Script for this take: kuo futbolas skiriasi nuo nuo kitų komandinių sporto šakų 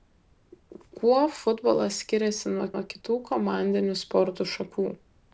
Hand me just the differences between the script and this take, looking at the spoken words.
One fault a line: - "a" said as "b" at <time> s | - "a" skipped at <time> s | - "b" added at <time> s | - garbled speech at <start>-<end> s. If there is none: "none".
none